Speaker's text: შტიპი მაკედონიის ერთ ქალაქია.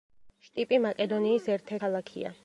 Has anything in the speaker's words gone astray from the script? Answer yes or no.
no